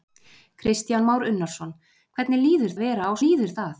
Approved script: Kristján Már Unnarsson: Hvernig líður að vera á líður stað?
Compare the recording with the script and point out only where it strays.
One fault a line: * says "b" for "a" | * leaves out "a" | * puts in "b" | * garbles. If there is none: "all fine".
all fine